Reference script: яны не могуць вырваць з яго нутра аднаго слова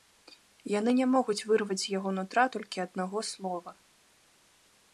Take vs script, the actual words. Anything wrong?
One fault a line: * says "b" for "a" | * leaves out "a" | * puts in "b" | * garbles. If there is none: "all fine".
* puts in "толькі"